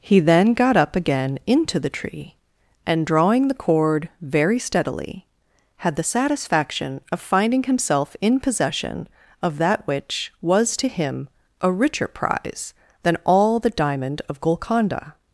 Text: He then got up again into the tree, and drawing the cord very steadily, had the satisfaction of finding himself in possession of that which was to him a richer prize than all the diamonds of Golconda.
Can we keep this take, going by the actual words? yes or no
no